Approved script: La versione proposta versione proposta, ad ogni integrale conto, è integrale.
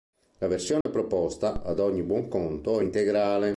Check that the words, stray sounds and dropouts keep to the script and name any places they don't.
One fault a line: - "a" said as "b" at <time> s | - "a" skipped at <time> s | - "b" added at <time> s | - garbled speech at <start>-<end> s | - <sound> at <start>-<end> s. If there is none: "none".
- dropout at 0.8-0.9 s
- "versione proposta" skipped at 1.6 s
- "integrale" said as "buon" at 2.0 s